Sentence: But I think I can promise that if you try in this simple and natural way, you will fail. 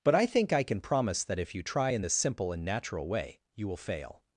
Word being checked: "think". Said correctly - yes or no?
yes